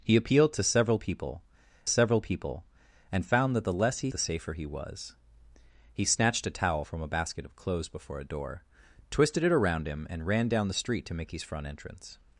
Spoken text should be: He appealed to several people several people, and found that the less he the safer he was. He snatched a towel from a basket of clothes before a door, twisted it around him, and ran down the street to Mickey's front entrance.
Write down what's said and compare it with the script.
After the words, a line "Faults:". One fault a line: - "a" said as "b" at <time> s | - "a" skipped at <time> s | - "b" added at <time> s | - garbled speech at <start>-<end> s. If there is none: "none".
He appealed to several people several people, and found that the less he the safer he was. He snatched a towel from a basket of clothes before a door, twisted it around him, and ran down the street to Mickey's front entrance.
Faults:
none